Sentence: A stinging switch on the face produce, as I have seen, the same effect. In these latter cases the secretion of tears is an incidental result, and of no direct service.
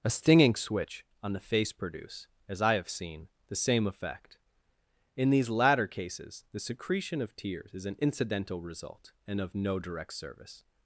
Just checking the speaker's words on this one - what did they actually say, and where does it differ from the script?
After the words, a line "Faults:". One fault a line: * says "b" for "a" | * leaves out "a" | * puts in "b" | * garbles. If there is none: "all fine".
A stinging switch on the face produce, as I have seen, the same effect. In these latter cases the secretion of tears is an incidental result, and of no direct service.
Faults:
all fine